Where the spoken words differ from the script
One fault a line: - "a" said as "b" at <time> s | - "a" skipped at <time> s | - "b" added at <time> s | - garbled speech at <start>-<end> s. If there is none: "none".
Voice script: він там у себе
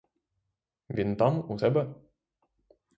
none